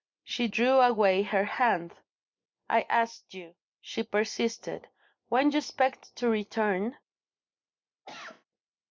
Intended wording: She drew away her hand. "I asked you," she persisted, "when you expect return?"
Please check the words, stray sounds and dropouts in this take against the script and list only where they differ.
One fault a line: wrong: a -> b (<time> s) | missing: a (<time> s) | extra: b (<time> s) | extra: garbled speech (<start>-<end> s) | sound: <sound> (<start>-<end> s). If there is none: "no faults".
extra: to (6.2 s)
sound: cough (8.0-8.4 s)